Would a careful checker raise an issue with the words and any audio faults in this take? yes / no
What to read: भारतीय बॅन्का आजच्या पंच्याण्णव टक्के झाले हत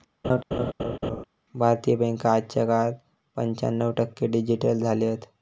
yes